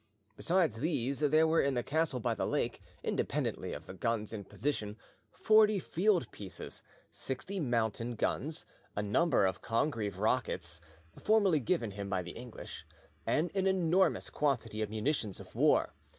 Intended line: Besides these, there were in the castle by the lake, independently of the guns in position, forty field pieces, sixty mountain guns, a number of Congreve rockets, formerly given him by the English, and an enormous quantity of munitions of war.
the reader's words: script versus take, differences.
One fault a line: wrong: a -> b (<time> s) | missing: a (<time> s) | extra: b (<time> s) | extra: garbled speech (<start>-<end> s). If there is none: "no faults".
no faults